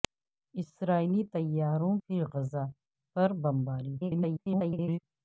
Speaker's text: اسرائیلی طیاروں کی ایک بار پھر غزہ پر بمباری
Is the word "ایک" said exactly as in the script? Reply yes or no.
no